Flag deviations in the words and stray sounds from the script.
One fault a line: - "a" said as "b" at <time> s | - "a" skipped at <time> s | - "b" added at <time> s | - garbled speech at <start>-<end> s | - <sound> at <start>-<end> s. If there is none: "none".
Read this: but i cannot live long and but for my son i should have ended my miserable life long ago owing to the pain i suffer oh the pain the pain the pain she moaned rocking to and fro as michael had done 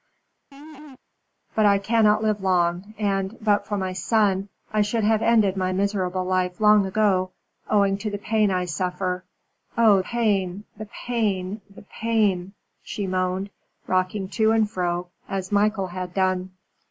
- laugh at 0.5-1.0 s
- "the" skipped at 10.0 s